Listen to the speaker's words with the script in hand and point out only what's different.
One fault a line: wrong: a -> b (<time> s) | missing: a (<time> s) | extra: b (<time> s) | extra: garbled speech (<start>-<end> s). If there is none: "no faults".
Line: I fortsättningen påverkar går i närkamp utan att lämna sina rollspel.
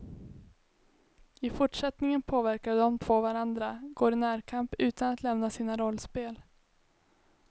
extra: de två varandra (2.8 s)